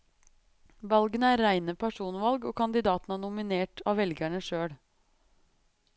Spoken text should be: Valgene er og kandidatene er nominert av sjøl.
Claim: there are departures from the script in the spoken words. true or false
true